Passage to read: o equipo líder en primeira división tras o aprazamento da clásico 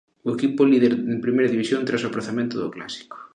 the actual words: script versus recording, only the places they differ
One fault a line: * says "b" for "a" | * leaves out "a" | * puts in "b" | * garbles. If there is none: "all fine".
* says "do" for "da"